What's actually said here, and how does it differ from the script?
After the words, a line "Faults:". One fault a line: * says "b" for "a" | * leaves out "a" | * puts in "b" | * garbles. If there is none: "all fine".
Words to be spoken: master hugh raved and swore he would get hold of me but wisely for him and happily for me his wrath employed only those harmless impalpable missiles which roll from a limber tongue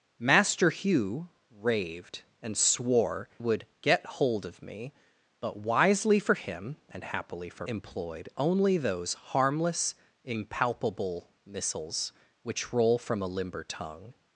master hugh raved and swore would get hold of me but wisely for him and happily for employed only those harmless impalpable missiles which roll from a limber tongue
Faults:
* leaves out "he"
* leaves out "me his wrath"